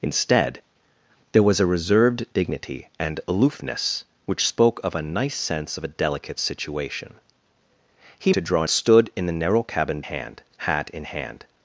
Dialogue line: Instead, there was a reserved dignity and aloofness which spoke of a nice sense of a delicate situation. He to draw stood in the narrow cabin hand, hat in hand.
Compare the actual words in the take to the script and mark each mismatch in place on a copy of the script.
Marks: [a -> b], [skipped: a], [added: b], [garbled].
Instead, there was a reserved dignity and aloofness which spoke of a nice sense of a delicate situation. He to draw stood in the narrow cabin hand, hat in hand.